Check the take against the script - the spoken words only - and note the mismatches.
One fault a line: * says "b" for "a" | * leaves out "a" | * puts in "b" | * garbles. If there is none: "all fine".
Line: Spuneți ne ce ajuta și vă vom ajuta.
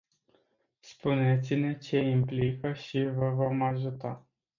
* says "implică" for "ajuta"